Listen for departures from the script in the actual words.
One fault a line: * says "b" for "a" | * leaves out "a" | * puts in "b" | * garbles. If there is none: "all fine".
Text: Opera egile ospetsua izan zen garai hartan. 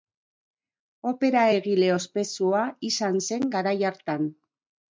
all fine